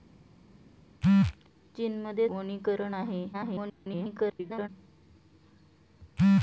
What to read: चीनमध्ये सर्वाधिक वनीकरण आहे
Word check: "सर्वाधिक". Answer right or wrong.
wrong